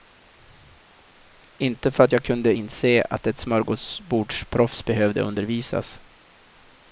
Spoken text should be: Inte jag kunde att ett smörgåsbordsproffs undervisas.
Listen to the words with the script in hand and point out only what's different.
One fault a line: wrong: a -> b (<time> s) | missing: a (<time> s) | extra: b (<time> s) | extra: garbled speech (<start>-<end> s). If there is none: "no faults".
extra: för att (1.9 s)
extra: inse (2.5 s)
extra: behövde (4.8 s)